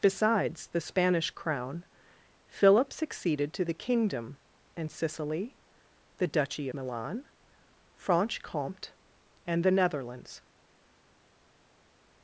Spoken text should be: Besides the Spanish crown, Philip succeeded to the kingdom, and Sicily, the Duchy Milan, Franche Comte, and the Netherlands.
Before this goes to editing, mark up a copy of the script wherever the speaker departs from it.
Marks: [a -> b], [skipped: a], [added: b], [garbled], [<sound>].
Besides the Spanish crown, Philip succeeded to the kingdom, and Sicily, the Duchy Milan, Franche Comte, and the Netherlands.